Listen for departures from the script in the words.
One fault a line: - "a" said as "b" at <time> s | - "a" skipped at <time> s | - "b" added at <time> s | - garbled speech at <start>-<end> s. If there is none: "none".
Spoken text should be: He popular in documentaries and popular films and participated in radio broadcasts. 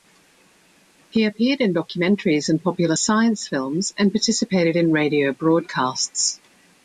- "popular" said as "appeared" at 1.2 s
- "science" added at 2.9 s